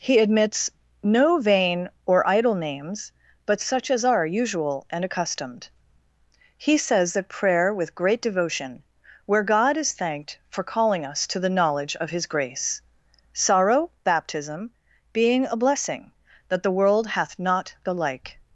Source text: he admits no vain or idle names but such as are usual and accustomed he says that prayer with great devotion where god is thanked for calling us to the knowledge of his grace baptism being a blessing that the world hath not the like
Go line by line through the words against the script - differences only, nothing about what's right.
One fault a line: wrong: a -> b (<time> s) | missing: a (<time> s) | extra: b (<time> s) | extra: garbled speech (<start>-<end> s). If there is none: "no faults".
extra: sorrow (13.3 s)